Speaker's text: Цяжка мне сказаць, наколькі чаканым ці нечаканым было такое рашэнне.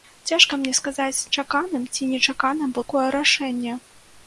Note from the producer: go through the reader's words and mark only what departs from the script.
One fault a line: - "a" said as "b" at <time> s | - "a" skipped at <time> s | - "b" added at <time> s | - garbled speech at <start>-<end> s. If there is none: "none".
- "наколькі" skipped at 1.3 s
- "было" skipped at 2.8 s